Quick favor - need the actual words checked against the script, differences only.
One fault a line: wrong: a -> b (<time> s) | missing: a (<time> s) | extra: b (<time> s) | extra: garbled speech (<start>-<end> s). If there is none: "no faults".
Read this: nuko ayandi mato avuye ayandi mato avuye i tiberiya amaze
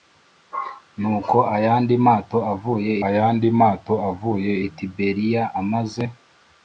no faults